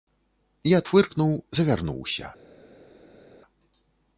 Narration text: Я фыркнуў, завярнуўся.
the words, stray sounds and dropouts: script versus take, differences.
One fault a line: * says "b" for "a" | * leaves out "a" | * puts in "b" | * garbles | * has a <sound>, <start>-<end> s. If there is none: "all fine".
all fine